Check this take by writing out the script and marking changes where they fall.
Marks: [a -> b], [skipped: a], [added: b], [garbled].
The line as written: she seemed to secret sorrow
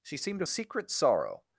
she seemed to secret sorrow